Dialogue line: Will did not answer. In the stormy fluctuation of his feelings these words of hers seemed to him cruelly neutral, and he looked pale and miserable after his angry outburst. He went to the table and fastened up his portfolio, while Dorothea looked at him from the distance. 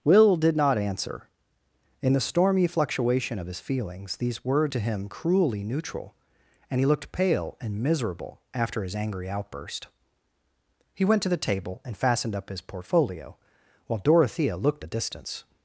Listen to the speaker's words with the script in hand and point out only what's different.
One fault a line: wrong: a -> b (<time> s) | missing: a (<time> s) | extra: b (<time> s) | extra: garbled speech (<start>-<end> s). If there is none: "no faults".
missing: of hers seemed (4.7 s)
missing: at him from (14.8 s)